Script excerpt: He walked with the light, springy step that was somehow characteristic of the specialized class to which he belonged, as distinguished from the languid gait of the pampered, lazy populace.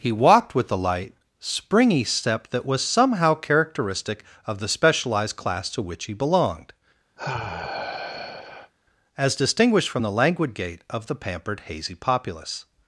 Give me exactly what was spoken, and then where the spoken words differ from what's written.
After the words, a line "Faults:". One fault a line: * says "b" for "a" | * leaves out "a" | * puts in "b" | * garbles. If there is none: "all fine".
He walked with the light, springy step that was somehow characteristic of the specialized class to which he belonged, as distinguished from the languid gait of the pampered, hazy populace.
Faults:
* says "hazy" for "lazy"